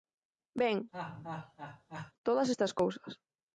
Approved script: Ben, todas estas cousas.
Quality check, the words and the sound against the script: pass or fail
fail